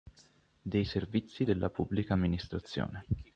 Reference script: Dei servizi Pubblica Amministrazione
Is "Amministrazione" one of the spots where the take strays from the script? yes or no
no